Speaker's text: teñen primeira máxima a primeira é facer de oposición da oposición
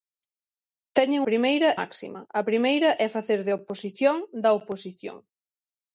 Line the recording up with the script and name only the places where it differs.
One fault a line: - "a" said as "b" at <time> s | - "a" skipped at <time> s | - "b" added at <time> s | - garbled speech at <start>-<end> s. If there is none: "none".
none